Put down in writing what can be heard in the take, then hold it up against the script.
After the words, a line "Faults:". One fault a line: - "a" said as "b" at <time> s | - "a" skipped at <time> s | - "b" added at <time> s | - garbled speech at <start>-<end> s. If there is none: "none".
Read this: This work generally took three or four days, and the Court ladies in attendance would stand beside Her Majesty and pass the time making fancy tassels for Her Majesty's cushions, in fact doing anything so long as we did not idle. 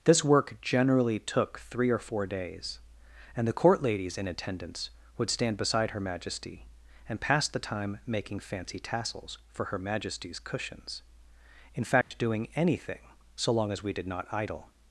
This work generally took three or four days, and the Court ladies in attendance would stand beside Her Majesty and pass the time making fancy tassels for Her Majesty's cushions, in fact doing anything so long as we did not idle.
Faults:
none